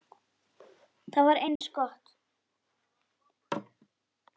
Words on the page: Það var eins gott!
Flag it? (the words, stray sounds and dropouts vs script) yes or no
yes